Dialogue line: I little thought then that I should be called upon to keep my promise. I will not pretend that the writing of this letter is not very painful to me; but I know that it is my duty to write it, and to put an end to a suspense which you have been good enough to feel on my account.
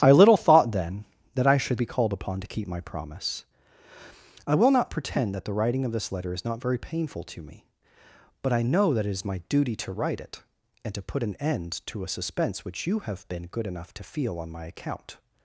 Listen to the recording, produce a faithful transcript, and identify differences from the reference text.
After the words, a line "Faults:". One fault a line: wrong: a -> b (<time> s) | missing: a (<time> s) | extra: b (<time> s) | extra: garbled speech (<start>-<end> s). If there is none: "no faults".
I little thought then that I should be called upon to keep my promise. I will not pretend that the writing of this letter is not very painful to me; but I know that it is my duty to write it, and to put an end to a suspense which you have been good enough to feel on my account.
Faults:
no faults